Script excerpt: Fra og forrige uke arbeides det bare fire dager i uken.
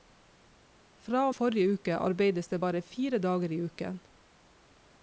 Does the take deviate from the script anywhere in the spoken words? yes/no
no